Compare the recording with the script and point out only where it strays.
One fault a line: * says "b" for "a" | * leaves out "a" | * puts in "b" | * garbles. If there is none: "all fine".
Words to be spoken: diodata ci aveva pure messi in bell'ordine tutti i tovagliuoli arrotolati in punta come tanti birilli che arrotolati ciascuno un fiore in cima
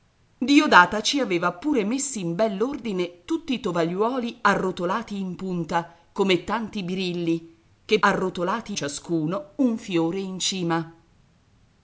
all fine